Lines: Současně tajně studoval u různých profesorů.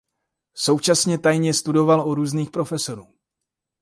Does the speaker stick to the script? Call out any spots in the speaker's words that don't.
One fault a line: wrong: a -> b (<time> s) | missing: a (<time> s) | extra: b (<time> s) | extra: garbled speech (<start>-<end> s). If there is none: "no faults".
no faults